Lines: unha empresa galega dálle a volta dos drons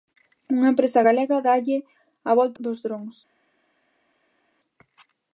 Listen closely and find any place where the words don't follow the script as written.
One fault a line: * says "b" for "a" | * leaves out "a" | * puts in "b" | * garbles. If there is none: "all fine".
all fine